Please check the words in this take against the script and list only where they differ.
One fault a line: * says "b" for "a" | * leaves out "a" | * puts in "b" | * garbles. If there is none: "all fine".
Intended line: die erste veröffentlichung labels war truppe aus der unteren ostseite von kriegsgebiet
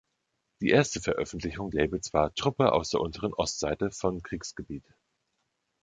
all fine